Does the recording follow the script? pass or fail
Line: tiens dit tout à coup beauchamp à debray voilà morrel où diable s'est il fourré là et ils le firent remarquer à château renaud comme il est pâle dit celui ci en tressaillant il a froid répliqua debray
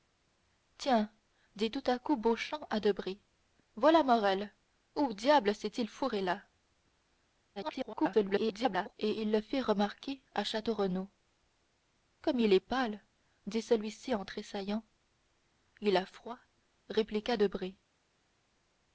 fail